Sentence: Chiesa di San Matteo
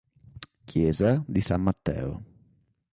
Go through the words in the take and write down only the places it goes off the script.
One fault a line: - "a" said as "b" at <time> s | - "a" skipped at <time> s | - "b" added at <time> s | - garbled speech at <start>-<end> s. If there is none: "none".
none